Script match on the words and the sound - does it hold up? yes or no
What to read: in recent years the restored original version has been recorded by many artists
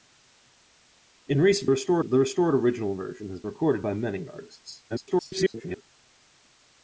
no